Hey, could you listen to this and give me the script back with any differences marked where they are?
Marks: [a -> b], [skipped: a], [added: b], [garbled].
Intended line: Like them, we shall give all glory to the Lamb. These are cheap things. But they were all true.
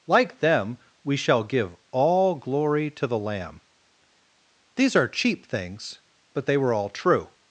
Like them, we shall give all glory to the Lamb. These are cheap things. But they were all true.